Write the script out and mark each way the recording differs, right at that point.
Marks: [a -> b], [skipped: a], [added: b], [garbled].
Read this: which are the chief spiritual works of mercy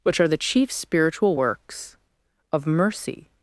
which are the chief spiritual works of mercy